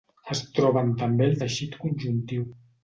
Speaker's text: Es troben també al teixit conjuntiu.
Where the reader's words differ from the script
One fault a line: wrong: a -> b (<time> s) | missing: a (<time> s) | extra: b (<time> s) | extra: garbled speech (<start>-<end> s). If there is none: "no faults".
no faults